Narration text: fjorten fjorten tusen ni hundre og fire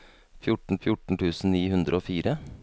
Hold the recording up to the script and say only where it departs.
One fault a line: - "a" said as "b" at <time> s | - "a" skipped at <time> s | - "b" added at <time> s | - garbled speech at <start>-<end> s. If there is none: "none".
none